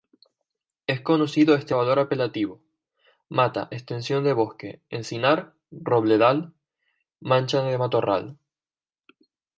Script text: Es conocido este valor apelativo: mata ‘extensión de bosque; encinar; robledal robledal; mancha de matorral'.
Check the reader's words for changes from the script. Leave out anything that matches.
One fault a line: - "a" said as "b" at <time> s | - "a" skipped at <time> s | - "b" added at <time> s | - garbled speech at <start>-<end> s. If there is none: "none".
- "robledal" skipped at 6.5 s